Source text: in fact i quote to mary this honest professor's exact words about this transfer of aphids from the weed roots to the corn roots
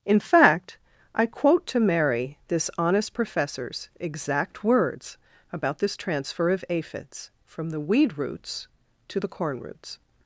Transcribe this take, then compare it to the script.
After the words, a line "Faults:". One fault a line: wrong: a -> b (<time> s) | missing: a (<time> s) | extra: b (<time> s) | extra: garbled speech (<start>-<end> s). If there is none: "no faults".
in fact i quote to mary this honest professor's exact words about this transfer of aphids from the weed roots to the corn roots
Faults:
no faults